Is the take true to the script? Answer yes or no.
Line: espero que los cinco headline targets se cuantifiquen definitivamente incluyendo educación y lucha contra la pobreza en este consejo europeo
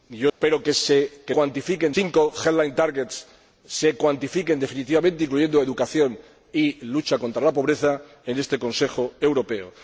no